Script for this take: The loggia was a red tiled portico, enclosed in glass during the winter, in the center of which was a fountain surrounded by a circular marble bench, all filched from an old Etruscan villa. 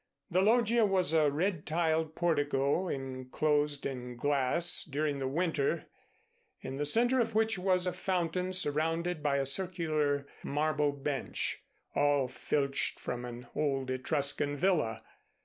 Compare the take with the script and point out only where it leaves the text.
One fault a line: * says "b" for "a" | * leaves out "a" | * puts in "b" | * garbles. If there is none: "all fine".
all fine